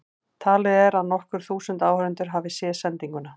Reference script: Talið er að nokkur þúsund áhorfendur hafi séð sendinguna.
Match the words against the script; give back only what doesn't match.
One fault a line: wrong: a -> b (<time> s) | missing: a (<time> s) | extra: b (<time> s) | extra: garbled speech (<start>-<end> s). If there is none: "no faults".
no faults